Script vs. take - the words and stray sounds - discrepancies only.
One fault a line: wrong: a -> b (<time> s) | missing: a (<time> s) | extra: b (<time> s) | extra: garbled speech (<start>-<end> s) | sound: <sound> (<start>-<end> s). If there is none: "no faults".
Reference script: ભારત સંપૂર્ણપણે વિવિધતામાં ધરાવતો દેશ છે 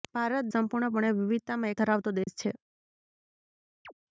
sound: dropout (2.2-2.3 s)
sound: chirp (3.8-3.9 s)